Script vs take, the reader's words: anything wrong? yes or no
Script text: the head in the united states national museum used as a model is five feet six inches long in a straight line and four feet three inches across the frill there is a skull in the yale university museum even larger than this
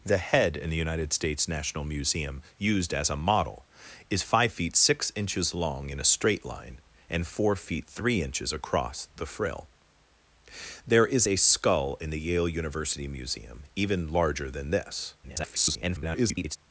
yes